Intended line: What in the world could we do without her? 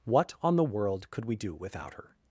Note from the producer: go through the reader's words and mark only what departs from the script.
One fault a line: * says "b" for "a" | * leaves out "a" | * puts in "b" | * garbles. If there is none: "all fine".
* says "on" for "in"